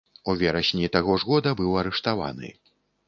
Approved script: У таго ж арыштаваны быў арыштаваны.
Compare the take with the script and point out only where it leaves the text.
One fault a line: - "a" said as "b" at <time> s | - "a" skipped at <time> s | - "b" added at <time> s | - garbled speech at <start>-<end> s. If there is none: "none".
- "верасні" added at 0.4 s
- "арыштаваны" said as "года" at 1.3 s